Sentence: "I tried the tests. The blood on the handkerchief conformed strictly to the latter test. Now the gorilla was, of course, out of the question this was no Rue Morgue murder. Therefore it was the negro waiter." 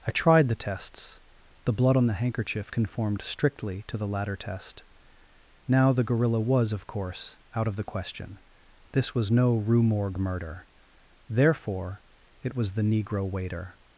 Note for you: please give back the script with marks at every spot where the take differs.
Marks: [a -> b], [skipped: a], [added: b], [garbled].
"I tried the tests. The blood on the handkerchief conformed strictly to the latter test. Now the gorilla was, of course, out of the question this was no Rue Morgue murder. Therefore it was the negro waiter."